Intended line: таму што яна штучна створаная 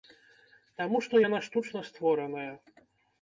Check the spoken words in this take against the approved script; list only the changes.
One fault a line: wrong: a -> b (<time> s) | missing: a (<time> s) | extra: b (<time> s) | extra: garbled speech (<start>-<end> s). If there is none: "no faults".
no faults